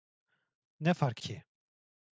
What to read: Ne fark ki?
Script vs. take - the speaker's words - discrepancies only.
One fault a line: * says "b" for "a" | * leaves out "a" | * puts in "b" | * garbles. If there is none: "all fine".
all fine